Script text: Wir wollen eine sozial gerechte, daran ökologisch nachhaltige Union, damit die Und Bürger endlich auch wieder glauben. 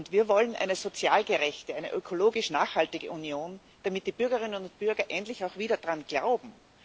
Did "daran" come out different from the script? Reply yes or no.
yes